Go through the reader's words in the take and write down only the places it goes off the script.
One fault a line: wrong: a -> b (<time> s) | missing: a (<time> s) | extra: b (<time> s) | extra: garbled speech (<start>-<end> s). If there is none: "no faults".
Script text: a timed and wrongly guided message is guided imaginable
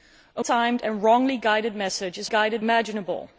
no faults